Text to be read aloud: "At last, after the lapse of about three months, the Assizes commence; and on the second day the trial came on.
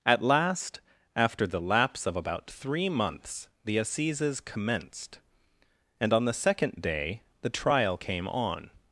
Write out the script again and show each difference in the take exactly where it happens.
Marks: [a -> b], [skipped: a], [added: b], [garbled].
"At last, after the lapse of about three months, the Assizes [commence; -> commenced] and on the second day the trial came on.